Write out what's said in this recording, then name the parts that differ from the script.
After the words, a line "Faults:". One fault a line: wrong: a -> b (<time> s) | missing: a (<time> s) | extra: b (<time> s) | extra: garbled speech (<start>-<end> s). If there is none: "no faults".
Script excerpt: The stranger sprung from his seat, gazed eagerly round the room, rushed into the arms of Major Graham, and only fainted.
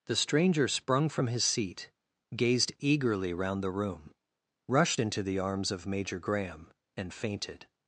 The stranger sprung from his seat, gazed eagerly round the room, rushed into the arms of Major Graham, and fainted.
Faults:
missing: only (7.1 s)